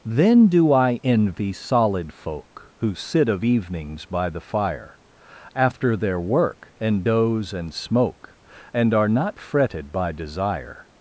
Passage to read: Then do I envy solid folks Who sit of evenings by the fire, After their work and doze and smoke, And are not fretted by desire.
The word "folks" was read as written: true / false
false